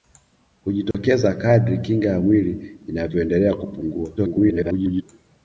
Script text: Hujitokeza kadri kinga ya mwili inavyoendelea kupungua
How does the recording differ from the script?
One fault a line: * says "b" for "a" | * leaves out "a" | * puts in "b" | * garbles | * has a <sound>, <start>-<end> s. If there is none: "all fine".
* has a dropout, 0.9-0.9 s
* garbles